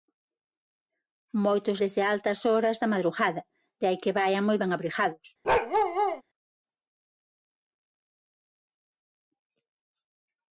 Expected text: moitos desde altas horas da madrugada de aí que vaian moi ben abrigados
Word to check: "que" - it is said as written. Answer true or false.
true